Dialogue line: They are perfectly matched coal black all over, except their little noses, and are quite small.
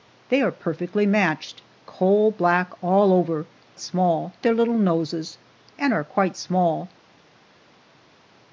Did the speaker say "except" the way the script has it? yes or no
no